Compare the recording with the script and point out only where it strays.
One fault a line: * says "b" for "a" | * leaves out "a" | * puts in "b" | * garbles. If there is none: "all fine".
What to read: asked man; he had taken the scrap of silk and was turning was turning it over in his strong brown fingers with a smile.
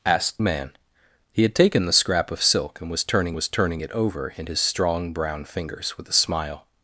all fine